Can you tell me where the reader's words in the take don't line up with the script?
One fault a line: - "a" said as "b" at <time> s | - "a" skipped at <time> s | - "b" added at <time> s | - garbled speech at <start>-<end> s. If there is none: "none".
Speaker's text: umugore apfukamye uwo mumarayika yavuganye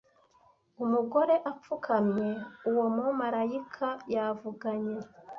none